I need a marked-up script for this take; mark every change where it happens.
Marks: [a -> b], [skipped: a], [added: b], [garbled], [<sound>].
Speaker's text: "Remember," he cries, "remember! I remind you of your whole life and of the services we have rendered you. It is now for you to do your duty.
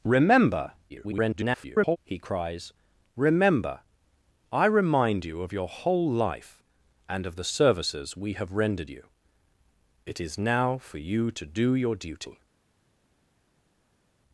"Remember," [garbled] he cries, "remember! I remind you of your whole life and of the services we have rendered you. It is now for you to do your duty.